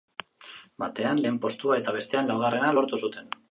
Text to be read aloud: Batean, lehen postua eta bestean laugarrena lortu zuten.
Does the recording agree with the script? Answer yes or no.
yes